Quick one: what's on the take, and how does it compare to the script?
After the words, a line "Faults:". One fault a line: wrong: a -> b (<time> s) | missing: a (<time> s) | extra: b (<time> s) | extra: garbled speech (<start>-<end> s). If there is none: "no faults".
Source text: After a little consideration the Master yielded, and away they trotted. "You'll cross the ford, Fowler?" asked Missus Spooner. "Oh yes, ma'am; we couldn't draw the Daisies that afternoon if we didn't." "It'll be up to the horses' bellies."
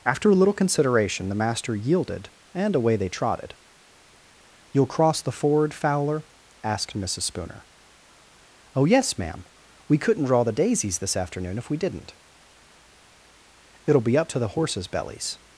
After a little consideration the Master yielded, and away they trotted. "You'll cross the ford, Fowler?" asked Missus Spooner. "Oh yes, ma'am; we couldn't draw the Daisies this afternoon if we didn't." "It'll be up to the horses' bellies."
Faults:
wrong: that -> this (11.0 s)